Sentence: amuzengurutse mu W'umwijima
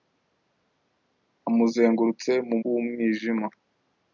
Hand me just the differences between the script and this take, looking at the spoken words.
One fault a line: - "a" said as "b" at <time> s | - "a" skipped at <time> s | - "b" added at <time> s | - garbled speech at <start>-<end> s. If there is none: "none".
none